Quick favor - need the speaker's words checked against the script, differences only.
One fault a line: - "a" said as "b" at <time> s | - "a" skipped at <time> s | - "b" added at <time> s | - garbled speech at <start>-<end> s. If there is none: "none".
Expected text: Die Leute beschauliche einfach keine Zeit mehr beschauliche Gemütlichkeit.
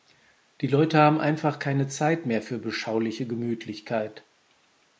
- "beschauliche" said as "haben" at 1.0 s
- "für" added at 2.4 s